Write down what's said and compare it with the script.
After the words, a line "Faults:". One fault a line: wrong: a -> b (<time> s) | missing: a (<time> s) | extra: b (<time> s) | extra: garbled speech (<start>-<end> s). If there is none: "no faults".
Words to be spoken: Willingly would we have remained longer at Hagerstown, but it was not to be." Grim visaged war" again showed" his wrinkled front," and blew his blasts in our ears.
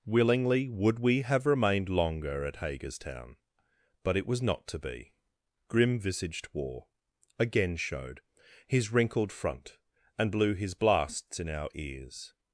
Willingly would we have remained longer at Hagerstown, but it was not to be." Grim visaged war" again showed" his wrinkled front," and blew his blasts in our ears.
Faults:
no faults